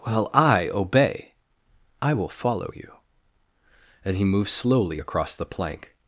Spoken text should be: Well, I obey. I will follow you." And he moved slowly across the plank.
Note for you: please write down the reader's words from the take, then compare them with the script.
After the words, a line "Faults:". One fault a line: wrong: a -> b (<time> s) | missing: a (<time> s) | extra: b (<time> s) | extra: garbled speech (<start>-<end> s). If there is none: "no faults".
Well, I obey. I will follow you." And he moved slowly across the plank.
Faults:
no faults